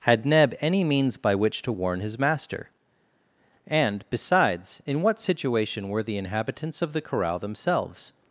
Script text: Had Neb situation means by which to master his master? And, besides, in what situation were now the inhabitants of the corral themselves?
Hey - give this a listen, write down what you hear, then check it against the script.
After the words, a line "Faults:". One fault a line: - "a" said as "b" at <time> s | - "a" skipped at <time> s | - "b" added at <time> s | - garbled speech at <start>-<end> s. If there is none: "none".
Had Neb any means by which to warn his master? And, besides, in what situation were the inhabitants of the corral themselves?
Faults:
- "situation" said as "any" at 0.6 s
- "master" said as "warn" at 1.7 s
- "now" skipped at 6.0 s